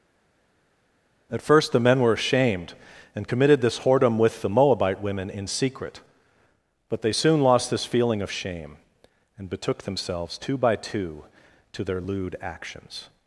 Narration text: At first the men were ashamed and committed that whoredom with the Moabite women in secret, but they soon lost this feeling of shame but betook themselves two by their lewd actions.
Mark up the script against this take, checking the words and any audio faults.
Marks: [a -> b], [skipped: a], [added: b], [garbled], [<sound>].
At first the men were ashamed and committed [that -> this] whoredom with the Moabite women in secret, but they soon lost this feeling of shame [but -> and] betook themselves two by [added: two to] their lewd actions.